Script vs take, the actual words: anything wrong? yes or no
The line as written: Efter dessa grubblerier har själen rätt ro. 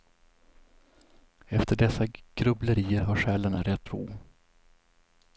no